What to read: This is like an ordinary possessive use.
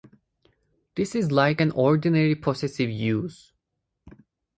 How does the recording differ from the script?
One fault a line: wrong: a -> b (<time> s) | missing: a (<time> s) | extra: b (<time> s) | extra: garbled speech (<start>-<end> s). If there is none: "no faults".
no faults